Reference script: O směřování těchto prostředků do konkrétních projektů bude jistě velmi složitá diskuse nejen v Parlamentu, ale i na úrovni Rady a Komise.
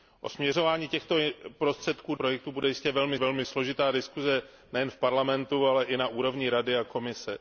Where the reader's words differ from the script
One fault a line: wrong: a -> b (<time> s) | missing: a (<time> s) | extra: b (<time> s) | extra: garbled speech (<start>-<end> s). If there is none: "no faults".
missing: do konkrétních (2.1 s)
extra: velmi (3.2 s)